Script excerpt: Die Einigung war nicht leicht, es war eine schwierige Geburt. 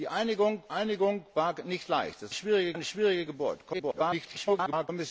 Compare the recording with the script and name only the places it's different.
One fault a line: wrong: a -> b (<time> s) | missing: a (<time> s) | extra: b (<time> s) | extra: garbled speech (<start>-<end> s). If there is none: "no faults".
extra: Einigung (0.7 s)
wrong: war -> schwierige (2.3 s)
extra: garbled speech (3.7-4.9 s)